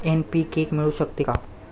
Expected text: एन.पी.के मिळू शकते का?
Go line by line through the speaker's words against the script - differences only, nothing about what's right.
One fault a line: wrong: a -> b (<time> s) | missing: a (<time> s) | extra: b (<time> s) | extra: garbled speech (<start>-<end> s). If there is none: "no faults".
no faults